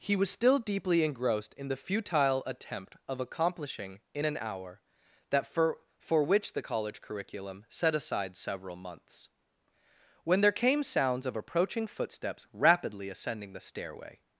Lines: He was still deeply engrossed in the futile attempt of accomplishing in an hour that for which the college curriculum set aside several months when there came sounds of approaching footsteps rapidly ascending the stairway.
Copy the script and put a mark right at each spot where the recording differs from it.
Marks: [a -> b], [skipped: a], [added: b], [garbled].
He was still deeply engrossed in the futile attempt of accomplishing in an hour that for [added: for] which the college curriculum set aside several months when there came sounds of approaching footsteps rapidly ascending the stairway.